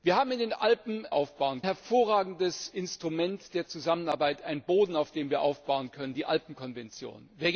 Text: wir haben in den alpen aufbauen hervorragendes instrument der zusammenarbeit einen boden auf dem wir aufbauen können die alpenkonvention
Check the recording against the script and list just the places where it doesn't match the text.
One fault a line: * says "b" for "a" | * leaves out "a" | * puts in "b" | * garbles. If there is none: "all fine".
all fine